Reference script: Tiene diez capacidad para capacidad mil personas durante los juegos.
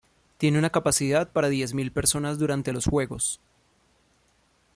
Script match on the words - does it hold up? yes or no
no